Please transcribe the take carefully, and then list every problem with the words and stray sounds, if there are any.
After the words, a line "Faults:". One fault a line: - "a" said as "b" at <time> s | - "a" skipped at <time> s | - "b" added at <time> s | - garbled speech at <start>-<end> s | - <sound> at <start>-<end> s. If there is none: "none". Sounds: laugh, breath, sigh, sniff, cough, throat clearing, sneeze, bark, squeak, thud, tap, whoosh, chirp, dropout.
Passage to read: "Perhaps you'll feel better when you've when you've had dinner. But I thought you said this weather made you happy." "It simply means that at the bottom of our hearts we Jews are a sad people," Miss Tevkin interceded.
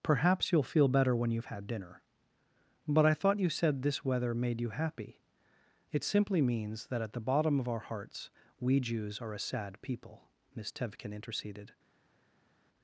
"Perhaps you'll feel better when you've had dinner. But I thought you said this weather made you happy." "It simply means that at the bottom of our hearts we Jews are a sad people," Miss Tevkin interceded.
Faults:
- "when you've" skipped at 1.5 s